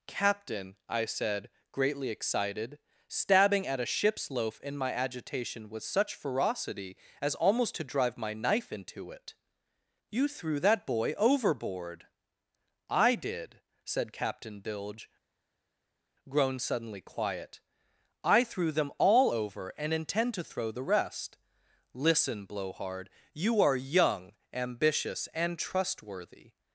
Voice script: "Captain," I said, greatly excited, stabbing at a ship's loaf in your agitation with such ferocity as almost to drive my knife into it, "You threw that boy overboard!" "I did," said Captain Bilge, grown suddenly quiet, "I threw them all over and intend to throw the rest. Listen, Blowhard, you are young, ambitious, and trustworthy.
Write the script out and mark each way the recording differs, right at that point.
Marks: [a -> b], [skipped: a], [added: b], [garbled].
"Captain," I said, greatly excited, stabbing at a ship's loaf in [your -> my] agitation with such ferocity as almost to drive my knife into it, "You threw that boy overboard!" "I did," said Captain Bilge, grown suddenly quiet, "I threw them all over and intend to throw the rest. Listen, Blowhard, you are young, ambitious, and trustworthy.